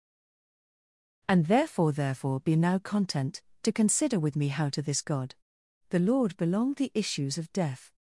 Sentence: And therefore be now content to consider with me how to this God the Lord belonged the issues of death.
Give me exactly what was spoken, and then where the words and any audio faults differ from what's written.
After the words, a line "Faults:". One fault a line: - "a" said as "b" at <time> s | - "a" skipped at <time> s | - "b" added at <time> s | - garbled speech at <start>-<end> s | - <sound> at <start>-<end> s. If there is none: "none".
And therefore therefore be now content to consider with me how to this God the Lord belonged the issues of death.
Faults:
- "therefore" added at 1.9 s